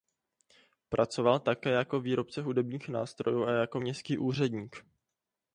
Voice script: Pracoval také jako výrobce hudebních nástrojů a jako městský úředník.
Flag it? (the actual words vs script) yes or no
no